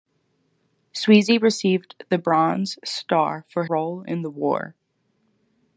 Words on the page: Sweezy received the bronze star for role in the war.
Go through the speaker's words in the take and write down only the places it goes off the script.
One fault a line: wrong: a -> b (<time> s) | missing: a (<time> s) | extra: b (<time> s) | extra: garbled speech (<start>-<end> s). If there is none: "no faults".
no faults